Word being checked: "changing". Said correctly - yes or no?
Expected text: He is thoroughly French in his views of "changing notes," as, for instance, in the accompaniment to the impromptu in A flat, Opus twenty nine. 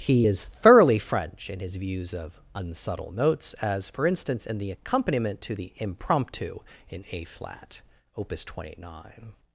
no